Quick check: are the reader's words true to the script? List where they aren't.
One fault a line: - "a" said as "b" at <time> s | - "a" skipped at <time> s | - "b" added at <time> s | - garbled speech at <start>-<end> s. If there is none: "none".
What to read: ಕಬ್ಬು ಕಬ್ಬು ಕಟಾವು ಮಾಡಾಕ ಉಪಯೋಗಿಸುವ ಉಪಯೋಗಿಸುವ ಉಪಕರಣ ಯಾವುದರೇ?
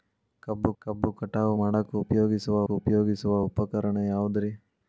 none